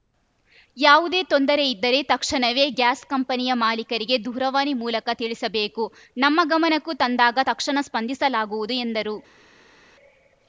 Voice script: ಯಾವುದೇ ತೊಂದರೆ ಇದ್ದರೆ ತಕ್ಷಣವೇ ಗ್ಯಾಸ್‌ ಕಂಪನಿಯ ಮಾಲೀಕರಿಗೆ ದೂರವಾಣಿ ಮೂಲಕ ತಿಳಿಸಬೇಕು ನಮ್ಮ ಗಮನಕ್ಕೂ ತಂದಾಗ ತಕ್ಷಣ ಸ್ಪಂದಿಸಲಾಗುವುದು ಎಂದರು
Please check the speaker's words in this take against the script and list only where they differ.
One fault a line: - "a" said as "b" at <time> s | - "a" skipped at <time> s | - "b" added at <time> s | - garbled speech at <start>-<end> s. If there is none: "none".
none